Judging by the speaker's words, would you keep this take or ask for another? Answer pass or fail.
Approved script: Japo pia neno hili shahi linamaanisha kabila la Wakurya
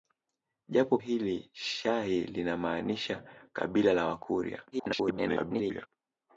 fail